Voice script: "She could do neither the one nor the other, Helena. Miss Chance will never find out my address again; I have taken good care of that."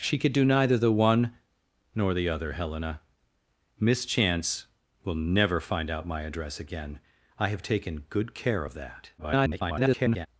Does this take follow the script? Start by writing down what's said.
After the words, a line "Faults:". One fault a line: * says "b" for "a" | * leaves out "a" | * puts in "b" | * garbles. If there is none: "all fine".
"She could do neither the one nor the other, Helena. Miss Chance will never find out my address again; I have taken good care of that." [garbled]
Faults:
* garbles